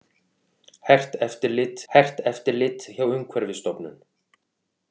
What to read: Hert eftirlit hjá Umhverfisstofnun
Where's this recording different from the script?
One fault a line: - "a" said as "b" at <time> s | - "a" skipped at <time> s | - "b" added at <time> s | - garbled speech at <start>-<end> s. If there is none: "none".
- "hert eftirlit" added at 1.9 s